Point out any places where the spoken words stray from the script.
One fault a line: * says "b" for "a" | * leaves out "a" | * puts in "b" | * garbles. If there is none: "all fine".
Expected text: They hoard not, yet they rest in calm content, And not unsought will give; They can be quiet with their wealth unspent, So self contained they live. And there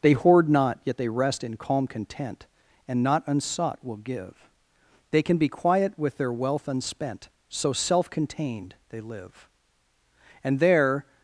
all fine